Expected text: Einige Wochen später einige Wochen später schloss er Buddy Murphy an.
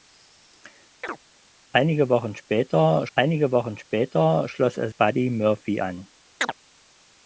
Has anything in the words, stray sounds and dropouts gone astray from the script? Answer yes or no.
yes